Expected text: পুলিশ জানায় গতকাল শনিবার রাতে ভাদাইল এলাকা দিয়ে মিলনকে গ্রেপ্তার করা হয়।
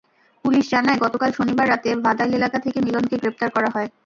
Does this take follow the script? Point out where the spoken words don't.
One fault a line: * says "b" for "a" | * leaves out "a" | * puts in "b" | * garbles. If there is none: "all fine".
* says "থেকে" for "দিয়ে"